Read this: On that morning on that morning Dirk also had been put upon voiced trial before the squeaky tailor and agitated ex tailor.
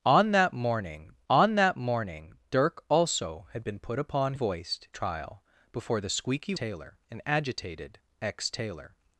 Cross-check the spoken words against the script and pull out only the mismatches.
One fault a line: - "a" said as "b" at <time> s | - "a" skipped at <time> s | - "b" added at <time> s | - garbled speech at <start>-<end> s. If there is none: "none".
none